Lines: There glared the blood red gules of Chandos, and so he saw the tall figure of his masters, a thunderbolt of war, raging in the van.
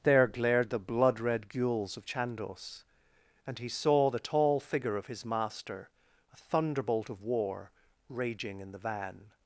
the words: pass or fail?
fail